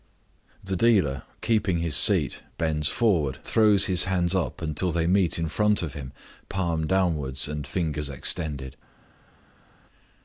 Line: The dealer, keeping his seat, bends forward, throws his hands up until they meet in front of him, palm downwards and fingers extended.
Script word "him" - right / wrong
right